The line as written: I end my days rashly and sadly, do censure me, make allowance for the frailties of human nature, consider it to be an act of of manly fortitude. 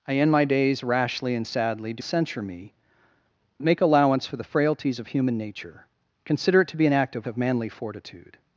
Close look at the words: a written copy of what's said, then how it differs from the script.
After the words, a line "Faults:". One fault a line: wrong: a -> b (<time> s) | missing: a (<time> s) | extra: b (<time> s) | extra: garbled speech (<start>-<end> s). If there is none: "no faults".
I end my days rashly and sadly, do censure me, make allowance for the frailties of human nature, consider it to be an act of of manly fortitude.
Faults:
no faults